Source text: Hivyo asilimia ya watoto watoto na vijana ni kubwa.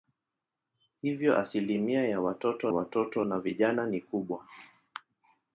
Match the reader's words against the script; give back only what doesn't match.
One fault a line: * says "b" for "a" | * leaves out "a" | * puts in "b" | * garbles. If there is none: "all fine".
all fine